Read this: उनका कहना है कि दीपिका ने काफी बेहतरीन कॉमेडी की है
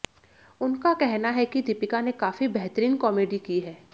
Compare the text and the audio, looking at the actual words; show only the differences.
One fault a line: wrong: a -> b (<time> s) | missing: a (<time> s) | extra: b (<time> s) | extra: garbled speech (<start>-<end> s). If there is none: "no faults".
no faults